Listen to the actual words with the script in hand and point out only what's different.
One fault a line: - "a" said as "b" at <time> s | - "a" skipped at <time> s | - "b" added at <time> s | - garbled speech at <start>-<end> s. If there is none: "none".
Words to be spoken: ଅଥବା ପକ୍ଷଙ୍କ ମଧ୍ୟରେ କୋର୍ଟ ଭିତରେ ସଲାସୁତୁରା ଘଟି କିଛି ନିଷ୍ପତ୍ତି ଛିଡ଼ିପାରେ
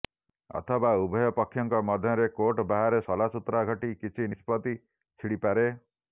- "ଉଭୟ" added at 1.0 s
- "ଭିତରେ" said as "ବାହାରେ" at 2.7 s